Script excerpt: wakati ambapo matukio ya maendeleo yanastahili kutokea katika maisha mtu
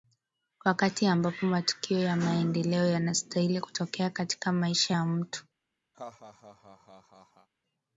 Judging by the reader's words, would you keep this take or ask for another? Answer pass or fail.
fail